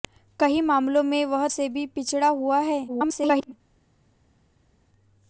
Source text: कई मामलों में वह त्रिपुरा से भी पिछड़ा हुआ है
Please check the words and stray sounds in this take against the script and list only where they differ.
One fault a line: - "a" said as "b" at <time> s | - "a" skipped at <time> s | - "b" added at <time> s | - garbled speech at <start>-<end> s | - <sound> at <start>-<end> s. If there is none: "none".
- "त्रिपुरा" skipped at 1.5 s
- garbled speech at 2.9-3.5 s